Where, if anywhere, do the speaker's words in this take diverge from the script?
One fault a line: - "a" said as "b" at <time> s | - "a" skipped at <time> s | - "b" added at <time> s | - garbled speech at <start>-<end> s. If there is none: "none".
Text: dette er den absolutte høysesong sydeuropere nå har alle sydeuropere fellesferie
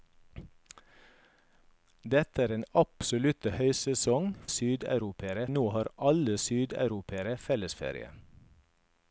none